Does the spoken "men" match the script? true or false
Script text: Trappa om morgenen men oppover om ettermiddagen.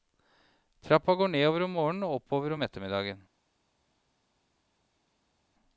false